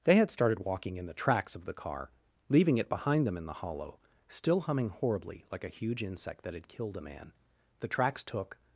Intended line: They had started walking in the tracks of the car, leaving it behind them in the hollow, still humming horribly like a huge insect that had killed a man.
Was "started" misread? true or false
false